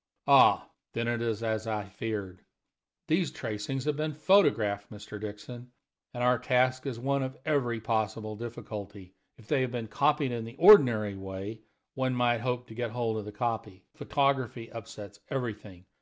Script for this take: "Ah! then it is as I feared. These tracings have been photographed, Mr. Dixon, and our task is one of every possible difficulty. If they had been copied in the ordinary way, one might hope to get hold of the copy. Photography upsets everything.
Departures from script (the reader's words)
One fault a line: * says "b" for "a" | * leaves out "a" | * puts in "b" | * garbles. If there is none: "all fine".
all fine